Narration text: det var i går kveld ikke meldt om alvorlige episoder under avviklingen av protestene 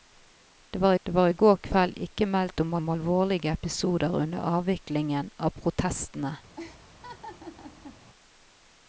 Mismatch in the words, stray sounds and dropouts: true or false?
true